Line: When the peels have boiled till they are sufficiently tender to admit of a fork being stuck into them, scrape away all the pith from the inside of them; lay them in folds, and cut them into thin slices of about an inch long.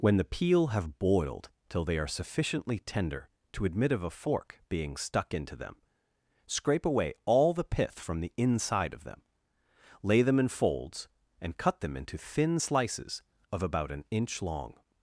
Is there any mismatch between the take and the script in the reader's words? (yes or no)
yes